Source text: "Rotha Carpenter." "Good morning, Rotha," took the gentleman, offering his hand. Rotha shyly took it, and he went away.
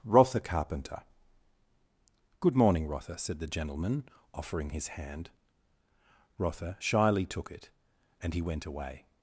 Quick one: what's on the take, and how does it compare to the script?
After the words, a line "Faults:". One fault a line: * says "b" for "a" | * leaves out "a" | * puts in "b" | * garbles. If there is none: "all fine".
"Rotha Carpenter." "Good morning, Rotha," said the gentleman, offering his hand. Rotha shyly took it, and he went away.
Faults:
* says "said" for "took"